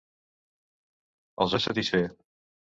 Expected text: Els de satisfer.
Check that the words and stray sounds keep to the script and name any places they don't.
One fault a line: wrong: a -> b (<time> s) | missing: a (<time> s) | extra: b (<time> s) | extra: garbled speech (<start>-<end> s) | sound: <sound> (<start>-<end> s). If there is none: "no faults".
no faults